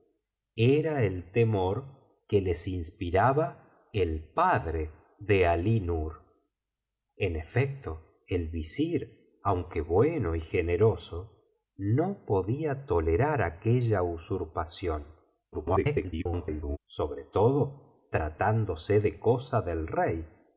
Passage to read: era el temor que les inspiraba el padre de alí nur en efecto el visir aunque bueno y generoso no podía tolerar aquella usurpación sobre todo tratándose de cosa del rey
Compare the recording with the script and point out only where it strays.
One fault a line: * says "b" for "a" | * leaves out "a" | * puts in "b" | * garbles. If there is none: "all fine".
* garbles